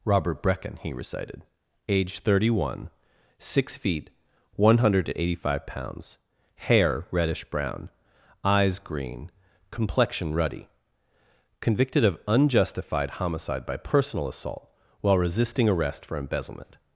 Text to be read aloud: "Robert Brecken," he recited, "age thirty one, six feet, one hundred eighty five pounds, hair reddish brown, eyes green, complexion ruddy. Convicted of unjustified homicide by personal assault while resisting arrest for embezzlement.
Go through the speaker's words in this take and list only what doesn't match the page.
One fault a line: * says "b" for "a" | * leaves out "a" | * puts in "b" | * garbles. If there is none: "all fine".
all fine